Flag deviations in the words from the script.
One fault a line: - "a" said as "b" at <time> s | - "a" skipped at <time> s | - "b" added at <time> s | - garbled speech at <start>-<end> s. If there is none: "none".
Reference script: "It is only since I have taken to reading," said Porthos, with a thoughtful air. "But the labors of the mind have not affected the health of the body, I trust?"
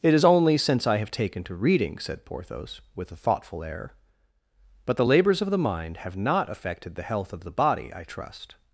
none